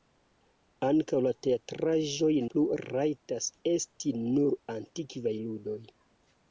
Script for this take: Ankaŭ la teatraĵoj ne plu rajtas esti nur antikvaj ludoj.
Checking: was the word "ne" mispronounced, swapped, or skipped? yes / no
yes